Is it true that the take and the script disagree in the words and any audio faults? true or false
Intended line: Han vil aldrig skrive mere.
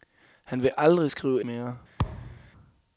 true